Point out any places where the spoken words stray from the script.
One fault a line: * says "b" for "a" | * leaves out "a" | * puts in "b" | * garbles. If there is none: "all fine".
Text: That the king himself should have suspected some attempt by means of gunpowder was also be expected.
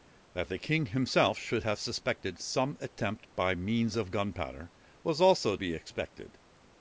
all fine